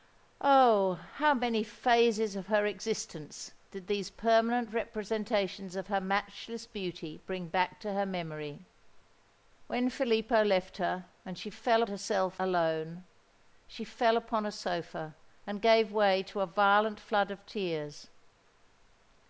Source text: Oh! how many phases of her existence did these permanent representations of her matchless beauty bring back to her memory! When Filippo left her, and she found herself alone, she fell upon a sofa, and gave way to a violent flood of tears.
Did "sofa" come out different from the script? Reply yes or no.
no